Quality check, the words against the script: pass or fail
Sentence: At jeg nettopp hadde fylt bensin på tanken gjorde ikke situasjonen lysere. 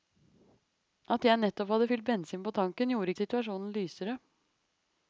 fail